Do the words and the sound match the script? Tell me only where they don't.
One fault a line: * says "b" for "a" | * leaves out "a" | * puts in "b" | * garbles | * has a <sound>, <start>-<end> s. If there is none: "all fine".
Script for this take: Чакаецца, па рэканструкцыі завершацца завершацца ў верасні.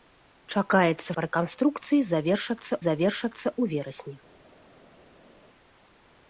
all fine